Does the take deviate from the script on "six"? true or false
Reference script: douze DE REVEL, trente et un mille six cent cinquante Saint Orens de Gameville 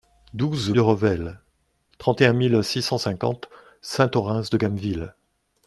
false